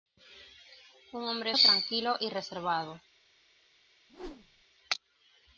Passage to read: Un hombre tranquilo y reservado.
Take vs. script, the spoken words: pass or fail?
pass